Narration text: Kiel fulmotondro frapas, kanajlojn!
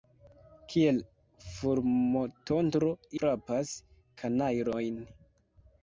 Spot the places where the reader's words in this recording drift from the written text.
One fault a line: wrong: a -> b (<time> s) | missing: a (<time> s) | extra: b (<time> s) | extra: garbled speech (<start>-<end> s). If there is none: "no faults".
no faults